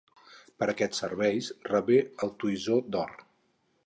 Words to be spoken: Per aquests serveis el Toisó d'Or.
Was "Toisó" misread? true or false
false